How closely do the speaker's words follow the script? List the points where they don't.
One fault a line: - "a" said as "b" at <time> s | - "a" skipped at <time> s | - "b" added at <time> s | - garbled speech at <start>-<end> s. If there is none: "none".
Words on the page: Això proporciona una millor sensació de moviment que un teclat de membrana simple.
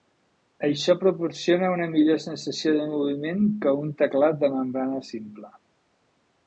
none